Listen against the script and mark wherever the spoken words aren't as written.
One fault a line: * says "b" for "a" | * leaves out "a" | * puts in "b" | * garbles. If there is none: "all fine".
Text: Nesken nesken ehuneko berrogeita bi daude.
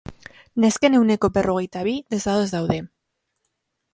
* leaves out "nesken"
* puts in "desados"